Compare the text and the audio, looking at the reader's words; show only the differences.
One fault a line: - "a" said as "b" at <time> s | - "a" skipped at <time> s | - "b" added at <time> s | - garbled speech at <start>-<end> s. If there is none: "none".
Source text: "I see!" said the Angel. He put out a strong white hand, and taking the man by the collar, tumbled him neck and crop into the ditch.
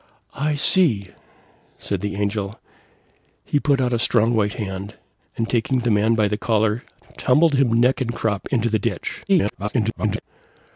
- garbled speech at 9.3-10.2 s